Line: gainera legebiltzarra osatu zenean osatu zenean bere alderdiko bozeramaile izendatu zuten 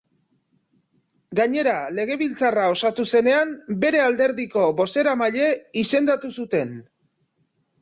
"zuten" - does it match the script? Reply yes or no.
yes